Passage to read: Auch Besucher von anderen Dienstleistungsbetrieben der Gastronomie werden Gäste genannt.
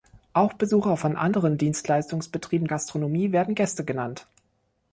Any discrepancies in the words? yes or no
yes